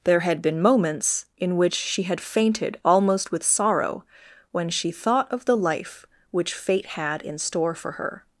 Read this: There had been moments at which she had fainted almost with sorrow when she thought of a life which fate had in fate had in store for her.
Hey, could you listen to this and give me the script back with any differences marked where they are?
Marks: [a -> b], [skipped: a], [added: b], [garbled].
There had been moments [at -> in] which she had fainted almost with sorrow when she thought of [a -> the] life which fate had in [skipped: fate had in] store for her.